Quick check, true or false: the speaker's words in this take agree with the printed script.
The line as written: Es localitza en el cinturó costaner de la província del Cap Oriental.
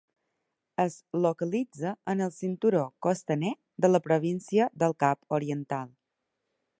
true